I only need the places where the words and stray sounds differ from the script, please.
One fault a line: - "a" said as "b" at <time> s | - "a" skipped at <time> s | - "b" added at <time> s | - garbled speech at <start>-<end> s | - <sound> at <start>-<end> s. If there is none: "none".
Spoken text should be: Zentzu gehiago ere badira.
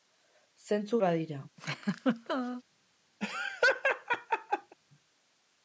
- "gehiago ere" skipped at 1.0 s
- laugh at 1.6-2.6 s
- laugh at 3.2-4.8 s